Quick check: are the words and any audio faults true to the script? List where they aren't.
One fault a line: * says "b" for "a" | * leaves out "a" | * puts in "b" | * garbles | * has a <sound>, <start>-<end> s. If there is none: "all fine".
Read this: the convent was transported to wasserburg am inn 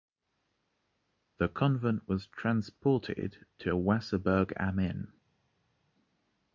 all fine